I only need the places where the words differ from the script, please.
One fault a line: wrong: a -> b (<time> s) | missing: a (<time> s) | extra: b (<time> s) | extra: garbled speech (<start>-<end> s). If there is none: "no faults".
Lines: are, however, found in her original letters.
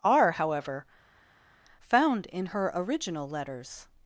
no faults